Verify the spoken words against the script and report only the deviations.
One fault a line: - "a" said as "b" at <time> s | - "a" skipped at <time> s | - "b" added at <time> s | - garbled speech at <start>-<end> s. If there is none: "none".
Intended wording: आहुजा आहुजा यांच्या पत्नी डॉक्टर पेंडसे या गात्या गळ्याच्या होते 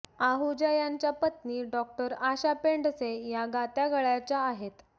- "आहुजा" skipped at 0.7 s
- "आशा" added at 2.2 s
- "होते" said as "आहेत" at 4.4 s